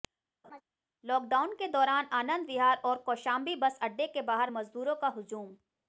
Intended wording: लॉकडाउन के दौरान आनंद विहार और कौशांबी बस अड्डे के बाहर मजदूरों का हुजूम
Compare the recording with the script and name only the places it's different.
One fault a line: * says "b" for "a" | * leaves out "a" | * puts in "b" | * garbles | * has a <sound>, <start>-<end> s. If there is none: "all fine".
* has a laugh, 0.4-0.6 s